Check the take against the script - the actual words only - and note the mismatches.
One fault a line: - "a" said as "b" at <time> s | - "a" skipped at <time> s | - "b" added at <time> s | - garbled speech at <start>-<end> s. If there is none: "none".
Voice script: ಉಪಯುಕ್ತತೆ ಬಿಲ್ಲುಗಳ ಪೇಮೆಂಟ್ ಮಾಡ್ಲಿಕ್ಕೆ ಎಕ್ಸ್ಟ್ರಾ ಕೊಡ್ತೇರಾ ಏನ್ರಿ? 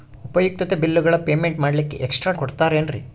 none